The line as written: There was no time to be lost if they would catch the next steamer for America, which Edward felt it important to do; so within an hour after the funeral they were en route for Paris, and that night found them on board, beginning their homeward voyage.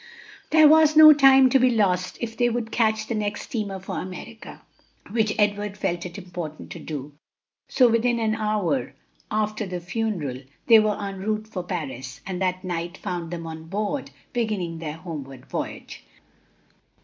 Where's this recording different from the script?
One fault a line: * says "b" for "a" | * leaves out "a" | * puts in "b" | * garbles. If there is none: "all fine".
all fine